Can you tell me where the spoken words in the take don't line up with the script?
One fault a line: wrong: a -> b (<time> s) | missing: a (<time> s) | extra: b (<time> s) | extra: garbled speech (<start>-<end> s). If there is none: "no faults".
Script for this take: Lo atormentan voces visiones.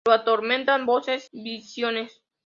no faults